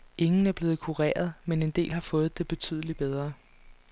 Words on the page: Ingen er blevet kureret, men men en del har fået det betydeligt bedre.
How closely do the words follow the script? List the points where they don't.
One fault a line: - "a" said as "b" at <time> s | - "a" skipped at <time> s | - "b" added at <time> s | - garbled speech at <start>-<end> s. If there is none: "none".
- "men" skipped at 1.6 s